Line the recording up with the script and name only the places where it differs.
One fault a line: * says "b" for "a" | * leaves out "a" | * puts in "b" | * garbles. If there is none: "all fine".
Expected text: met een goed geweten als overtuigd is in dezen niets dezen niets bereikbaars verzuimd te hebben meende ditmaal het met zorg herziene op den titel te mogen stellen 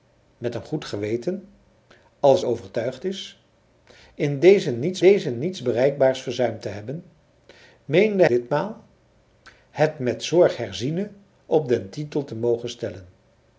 all fine